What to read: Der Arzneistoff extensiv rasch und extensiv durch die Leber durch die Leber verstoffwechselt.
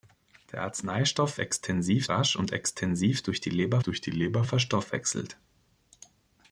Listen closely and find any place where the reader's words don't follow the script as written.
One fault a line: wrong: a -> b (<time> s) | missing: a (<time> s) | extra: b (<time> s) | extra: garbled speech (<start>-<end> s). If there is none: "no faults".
no faults